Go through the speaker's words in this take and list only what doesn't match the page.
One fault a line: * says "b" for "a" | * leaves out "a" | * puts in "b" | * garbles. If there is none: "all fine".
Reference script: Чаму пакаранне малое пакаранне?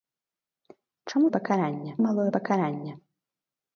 all fine